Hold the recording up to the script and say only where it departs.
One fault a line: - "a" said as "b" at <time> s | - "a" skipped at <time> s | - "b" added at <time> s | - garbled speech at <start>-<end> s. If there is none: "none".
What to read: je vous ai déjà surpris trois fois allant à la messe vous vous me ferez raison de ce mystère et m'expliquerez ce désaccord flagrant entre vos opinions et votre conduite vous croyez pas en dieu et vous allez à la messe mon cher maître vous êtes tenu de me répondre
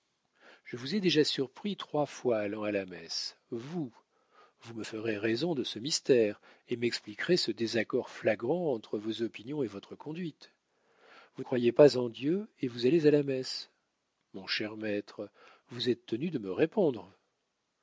none